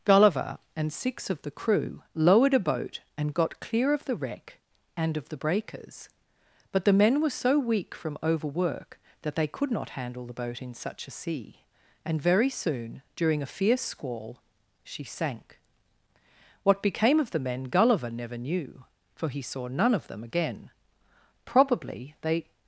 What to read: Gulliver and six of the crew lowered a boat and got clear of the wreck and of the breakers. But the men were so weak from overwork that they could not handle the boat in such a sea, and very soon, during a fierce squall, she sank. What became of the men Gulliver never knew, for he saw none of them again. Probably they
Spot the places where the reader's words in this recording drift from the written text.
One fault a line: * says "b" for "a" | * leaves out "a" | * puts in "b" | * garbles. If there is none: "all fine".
all fine